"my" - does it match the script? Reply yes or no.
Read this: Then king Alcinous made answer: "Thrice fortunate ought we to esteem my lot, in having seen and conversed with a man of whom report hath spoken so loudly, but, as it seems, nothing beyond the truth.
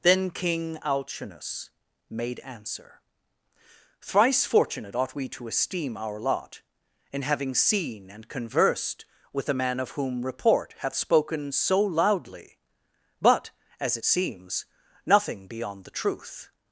no